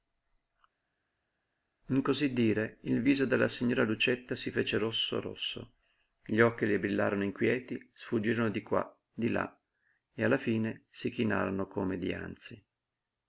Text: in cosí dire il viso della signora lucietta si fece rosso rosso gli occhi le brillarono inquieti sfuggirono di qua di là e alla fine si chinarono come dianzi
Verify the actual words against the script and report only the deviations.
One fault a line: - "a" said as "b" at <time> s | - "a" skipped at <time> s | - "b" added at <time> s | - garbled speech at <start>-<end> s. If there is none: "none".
none